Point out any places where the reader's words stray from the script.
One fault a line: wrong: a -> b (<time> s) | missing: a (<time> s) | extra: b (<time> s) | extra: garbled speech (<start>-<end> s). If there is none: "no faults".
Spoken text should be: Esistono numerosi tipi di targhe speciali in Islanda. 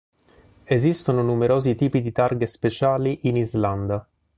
no faults